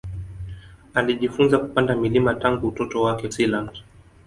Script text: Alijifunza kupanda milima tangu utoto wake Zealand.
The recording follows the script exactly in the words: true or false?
true